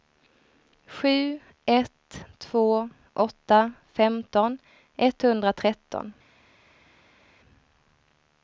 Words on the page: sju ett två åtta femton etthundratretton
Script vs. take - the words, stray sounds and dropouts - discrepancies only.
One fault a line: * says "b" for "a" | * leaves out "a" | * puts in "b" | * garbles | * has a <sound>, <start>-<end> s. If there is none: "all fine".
all fine